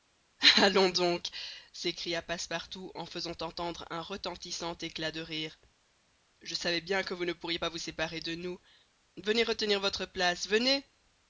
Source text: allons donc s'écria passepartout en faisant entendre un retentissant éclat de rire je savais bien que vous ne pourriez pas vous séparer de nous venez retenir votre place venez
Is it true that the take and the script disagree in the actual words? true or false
false